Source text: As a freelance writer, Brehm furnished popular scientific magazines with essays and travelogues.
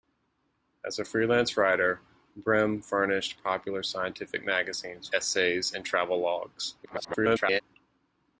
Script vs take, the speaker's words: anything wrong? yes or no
yes